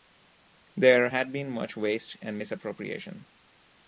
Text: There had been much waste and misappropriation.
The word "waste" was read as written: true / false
true